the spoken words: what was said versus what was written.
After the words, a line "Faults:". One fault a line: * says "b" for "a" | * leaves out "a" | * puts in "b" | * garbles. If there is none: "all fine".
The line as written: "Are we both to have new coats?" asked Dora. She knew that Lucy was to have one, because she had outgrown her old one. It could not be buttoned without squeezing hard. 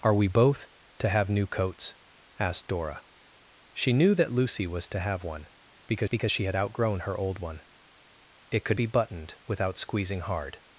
"Are we both to have new coats?" asked Dora. She knew that Lucy was to have one, because because she had outgrown her old one. It could be buttoned without squeezing hard.
Faults:
* puts in "because"
* leaves out "not"